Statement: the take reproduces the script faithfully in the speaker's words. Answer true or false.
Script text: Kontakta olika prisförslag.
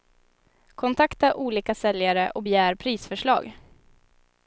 false